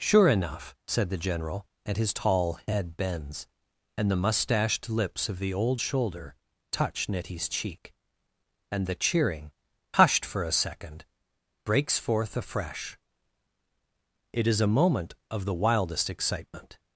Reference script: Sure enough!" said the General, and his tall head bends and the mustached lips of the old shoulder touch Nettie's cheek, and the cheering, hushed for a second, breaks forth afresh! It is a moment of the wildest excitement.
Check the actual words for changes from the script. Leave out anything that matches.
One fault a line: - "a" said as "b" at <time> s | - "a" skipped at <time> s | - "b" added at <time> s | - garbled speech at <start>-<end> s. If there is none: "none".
none